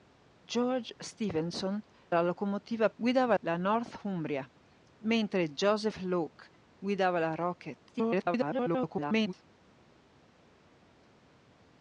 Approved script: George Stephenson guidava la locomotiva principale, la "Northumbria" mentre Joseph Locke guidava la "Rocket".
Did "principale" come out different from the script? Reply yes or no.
yes